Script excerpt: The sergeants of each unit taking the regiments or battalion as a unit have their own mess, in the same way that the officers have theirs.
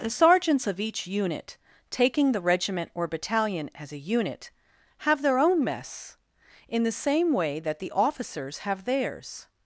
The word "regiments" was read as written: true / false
false